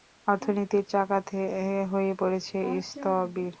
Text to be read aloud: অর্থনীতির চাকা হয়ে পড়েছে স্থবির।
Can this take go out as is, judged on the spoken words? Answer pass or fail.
pass